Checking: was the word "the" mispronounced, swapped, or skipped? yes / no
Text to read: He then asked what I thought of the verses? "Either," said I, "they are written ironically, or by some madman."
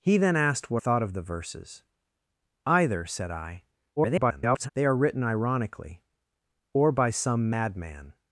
no